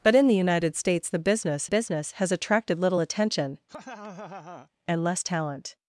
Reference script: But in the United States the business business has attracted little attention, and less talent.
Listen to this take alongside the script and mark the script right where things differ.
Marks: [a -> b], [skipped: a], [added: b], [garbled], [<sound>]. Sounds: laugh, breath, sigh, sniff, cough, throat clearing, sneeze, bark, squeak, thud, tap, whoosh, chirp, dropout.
But in the United States the business business has attracted little attention, [laugh] and less talent.